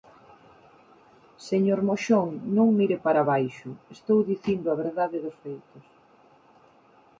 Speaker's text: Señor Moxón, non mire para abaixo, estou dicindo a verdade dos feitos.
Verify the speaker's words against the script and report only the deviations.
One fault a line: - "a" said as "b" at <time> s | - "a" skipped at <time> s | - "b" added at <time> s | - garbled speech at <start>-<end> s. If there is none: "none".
none